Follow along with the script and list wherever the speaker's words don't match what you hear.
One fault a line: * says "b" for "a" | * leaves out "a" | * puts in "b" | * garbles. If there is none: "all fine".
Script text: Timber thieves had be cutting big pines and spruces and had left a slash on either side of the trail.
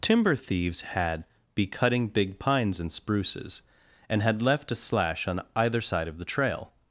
all fine